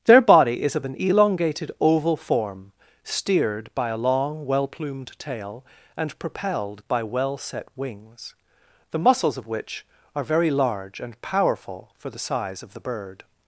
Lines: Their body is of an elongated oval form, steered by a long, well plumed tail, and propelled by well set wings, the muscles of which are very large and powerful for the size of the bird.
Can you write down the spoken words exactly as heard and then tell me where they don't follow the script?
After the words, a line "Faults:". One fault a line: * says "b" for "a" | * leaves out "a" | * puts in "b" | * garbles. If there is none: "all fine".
Their body is of an elongated oval form, steered by a long, well plumed tail, and propelled by well set wings, the muscles of which are very large and powerful for the size of the bird.
Faults:
all fine